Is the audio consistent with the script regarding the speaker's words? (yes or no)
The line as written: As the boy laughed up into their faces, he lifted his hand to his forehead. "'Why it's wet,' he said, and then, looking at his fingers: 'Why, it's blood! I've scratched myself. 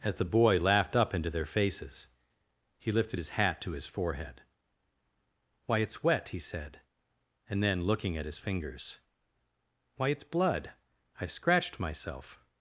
no